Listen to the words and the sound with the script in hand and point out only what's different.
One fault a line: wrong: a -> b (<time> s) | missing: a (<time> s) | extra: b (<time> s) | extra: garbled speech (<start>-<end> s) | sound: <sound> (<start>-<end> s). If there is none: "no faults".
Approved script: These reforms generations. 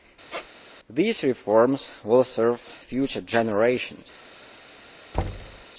sound: squeak (0.3-0.5 s)
extra: will serve future (2.0 s)
sound: thud (5.1-5.7 s)